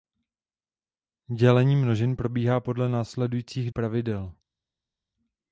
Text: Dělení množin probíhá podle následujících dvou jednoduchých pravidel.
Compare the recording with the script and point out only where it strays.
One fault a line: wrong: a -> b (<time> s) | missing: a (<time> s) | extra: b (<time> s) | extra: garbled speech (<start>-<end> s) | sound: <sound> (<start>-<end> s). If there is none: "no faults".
missing: dvou jednoduchých (3.7 s)